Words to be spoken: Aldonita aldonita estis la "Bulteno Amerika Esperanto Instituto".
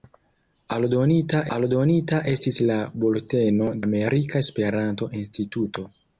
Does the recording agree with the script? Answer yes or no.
yes